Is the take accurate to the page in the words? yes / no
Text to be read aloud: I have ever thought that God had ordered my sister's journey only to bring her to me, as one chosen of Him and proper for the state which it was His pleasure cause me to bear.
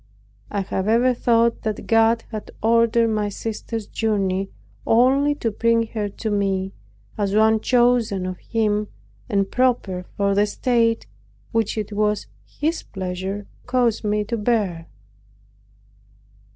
yes